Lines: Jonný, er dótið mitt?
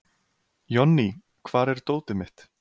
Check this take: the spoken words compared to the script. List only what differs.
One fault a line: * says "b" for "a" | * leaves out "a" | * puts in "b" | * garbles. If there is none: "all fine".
* puts in "hvar"